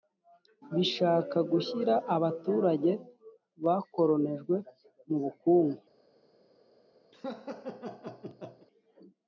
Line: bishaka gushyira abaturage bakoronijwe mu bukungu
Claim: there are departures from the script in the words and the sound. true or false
true